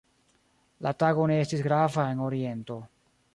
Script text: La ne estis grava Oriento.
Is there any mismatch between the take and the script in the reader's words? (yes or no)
yes